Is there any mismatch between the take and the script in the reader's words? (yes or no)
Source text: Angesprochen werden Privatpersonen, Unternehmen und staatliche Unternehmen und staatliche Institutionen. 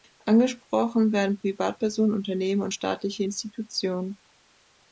yes